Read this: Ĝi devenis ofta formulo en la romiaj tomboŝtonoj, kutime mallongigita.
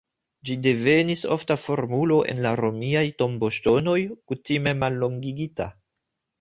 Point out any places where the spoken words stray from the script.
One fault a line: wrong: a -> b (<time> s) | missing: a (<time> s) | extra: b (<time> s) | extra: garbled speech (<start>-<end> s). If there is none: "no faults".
no faults